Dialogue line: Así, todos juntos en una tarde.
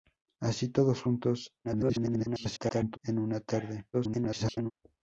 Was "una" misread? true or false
false